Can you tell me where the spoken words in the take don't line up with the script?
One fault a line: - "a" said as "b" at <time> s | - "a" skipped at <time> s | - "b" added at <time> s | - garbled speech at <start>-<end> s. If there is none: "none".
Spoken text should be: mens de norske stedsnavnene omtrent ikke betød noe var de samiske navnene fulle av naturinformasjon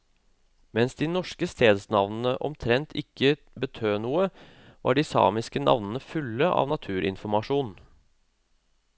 none